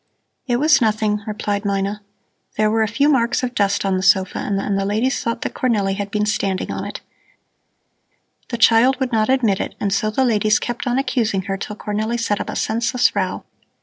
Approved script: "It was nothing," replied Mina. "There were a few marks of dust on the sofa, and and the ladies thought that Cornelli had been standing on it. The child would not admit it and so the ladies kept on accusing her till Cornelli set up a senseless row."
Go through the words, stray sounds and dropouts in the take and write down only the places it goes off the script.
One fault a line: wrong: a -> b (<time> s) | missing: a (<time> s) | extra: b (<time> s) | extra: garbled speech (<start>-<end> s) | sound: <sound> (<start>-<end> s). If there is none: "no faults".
no faults